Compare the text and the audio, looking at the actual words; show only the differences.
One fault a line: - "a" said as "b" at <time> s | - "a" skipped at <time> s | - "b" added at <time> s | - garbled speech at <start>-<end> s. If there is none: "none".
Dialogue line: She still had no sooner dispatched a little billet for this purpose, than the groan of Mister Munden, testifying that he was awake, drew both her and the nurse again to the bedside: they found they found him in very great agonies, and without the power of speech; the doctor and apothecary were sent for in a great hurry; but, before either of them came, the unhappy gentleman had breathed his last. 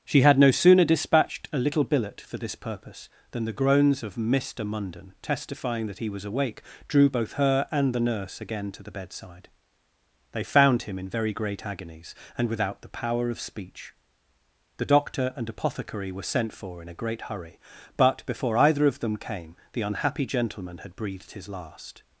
- "still" skipped at 0.2 s
- "groan" said as "groans" at 3.5 s
- "they found" skipped at 10.8 s